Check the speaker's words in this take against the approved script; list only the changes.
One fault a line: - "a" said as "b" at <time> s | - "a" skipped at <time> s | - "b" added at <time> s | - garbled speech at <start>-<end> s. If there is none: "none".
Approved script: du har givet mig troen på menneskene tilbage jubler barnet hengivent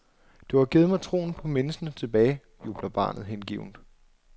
none